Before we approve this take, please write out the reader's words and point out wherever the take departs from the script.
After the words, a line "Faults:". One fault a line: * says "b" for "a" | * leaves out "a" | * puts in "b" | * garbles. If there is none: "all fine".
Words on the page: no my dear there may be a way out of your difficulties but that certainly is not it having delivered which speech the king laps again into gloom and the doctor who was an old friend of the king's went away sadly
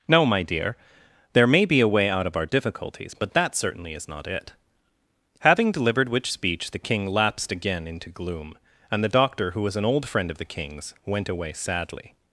no my dear there may be a way out of our difficulties but that certainly is not it having delivered which speech the king lapsed again into gloom and the doctor who was an old friend of the king's went away sadly
Faults:
* says "our" for "your"
* says "lapsed" for "laps"